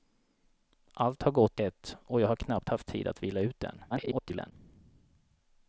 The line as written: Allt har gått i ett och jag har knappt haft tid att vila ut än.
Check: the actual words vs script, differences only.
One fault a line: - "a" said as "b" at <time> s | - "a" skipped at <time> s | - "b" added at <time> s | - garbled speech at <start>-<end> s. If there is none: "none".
- "i" skipped at 1.6 s
- garbled speech at 3.9-4.5 s